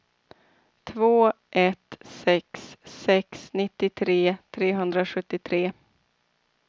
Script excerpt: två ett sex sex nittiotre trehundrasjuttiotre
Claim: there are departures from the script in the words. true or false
false